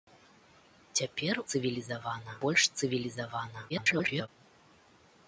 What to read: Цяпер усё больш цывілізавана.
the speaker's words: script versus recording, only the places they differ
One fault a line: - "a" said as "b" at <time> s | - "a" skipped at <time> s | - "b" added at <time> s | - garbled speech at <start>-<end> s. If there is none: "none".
- "усё" said as "цывілізавана" at 1.5 s
- garbled speech at 3.7-4.3 s